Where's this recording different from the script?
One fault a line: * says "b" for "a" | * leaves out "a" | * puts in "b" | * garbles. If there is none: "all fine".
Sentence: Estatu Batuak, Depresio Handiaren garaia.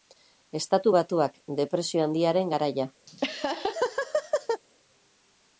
all fine